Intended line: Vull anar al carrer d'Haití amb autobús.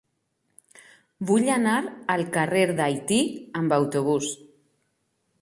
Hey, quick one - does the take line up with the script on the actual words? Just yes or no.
yes